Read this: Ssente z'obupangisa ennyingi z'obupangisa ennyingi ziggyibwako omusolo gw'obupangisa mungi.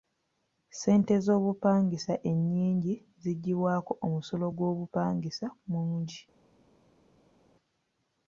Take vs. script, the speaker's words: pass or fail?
fail